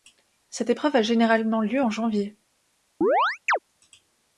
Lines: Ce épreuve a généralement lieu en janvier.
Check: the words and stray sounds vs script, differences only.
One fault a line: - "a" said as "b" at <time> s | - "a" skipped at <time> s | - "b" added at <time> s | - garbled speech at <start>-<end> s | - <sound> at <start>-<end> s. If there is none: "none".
- "Ce" said as "Cette" at 0.5 s
- chirp at 3.0-3.6 s